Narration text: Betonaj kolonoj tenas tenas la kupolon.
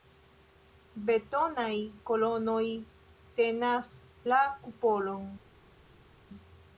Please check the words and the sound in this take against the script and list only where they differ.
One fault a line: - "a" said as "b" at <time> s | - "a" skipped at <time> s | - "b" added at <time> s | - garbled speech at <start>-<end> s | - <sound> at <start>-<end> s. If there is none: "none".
- "tenas" skipped at 4.0 s